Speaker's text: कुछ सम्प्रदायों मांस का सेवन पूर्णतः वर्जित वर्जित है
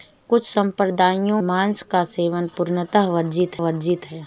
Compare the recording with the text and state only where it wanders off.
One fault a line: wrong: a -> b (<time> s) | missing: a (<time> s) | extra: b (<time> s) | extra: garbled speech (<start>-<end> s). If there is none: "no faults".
no faults